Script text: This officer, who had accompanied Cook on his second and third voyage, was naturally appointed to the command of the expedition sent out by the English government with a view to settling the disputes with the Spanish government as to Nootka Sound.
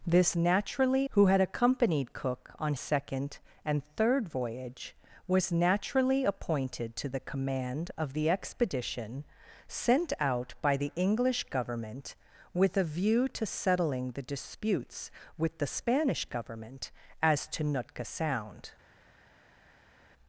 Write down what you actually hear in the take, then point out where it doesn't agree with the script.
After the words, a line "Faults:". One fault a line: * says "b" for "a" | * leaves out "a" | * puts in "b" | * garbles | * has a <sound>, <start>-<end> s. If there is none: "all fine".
This naturally, who had accompanied Cook on second and third voyage, was naturally appointed to the command of the expedition sent out by the English government with a view to settling the disputes with the Spanish government as to Nootka Sound.
Faults:
* says "naturally" for "officer"
* leaves out "his"